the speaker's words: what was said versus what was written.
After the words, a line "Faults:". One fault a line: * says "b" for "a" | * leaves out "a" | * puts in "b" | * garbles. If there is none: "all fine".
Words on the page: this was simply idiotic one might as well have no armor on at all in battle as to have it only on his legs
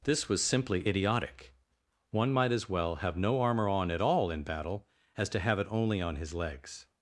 this was simply idiotic one might as well have no armor on at all in battle as to have it only on his legs
Faults:
all fine